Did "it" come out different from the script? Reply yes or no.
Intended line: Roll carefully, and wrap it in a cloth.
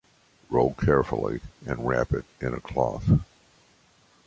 no